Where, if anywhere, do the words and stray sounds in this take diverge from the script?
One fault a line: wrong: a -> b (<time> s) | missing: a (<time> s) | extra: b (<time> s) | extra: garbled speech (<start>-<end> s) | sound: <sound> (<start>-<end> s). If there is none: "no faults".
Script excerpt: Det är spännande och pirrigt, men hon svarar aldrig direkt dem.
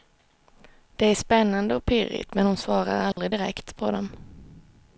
sound: dropout (3.1-3.2 s)
extra: på (3.8 s)